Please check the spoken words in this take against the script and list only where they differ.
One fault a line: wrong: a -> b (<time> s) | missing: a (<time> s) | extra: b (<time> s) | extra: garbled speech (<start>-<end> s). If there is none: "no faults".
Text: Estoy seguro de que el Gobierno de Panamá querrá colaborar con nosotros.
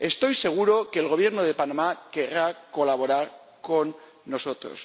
no faults